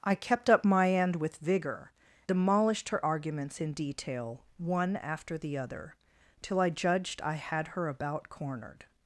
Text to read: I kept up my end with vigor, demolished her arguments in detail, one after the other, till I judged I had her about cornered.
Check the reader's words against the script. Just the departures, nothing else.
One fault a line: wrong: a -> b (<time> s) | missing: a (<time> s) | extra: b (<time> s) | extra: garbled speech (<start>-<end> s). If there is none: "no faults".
no faults